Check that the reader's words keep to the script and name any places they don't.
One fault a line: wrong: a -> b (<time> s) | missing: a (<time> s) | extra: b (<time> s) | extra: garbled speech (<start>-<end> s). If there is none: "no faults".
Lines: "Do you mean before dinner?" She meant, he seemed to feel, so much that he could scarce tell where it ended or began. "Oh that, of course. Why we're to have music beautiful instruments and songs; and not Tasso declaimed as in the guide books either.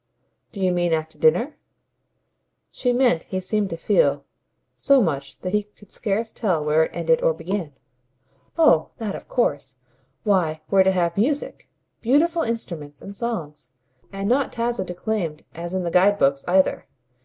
wrong: before -> after (0.9 s)